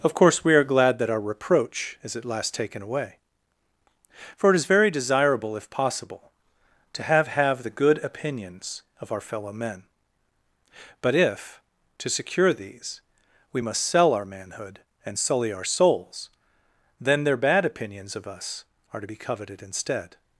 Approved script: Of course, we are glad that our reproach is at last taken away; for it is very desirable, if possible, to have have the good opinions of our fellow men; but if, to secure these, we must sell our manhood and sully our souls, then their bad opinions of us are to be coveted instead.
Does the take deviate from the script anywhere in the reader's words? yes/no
no